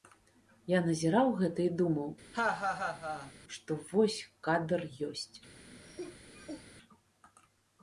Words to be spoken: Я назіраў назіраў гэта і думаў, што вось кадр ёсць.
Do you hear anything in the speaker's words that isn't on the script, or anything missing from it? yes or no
yes